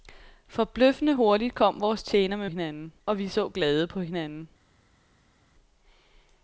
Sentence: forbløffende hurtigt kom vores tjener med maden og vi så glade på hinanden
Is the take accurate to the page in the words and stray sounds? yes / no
no